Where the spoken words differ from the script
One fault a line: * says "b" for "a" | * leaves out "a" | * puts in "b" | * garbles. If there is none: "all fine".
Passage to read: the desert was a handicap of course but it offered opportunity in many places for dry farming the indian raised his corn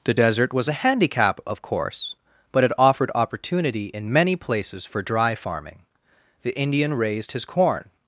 all fine